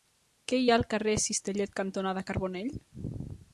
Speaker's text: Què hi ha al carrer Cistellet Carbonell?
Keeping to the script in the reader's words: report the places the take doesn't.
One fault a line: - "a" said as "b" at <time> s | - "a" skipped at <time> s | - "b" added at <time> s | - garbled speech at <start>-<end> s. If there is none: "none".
- "cantonada" added at 1.8 s